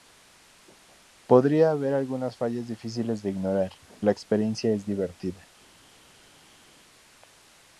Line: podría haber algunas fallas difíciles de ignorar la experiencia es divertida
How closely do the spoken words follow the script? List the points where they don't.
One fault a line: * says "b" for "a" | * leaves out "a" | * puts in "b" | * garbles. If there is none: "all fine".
all fine